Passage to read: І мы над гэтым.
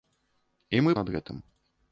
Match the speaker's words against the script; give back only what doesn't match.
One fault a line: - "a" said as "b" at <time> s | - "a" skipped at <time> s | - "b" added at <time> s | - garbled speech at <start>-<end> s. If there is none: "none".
none